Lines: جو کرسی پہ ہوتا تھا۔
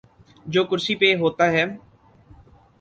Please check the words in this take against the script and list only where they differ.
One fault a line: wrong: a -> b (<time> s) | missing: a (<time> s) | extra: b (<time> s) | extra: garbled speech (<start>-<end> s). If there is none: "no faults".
wrong: تھا -> ہے (1.5 s)